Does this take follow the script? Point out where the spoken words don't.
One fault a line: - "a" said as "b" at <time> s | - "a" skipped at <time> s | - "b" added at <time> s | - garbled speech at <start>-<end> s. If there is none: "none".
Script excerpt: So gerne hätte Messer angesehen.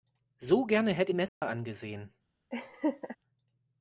none